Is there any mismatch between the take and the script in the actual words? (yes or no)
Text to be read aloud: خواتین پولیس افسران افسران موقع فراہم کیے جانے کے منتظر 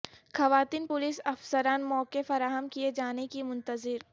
yes